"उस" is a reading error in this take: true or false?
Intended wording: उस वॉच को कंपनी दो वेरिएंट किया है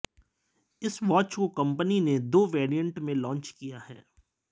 true